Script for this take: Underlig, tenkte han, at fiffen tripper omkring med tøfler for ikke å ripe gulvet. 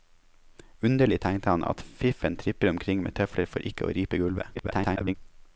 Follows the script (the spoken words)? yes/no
no